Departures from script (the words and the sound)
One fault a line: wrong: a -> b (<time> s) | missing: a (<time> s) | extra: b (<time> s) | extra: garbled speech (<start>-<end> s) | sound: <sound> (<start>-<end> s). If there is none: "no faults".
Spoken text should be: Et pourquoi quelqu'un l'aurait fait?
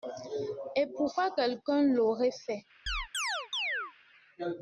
sound: chirp (2.9-3.9 s)